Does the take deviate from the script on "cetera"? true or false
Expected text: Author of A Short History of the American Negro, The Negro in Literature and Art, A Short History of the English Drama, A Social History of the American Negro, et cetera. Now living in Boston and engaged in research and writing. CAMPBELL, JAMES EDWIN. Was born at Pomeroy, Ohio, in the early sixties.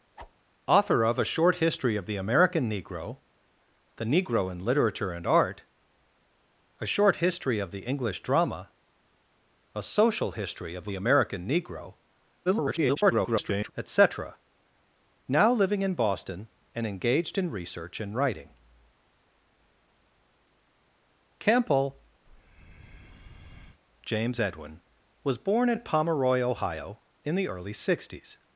false